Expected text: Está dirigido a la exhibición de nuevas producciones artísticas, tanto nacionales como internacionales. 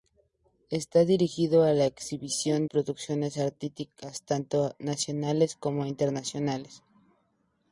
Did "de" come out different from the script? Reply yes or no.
yes